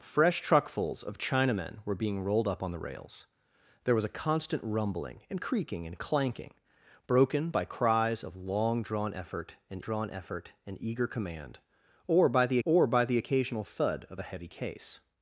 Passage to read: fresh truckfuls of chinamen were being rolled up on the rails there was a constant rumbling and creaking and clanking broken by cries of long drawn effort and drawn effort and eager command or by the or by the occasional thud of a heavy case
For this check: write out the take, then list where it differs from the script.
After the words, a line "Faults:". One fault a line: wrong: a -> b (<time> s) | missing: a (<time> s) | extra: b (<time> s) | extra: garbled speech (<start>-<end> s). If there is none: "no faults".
fresh truckfuls of chinamen were being rolled up on the rails there was a constant rumbling and creaking and clanking broken by cries of long drawn effort and drawn effort and eager command or by the or by the occasional thud of a heavy case
Faults:
no faults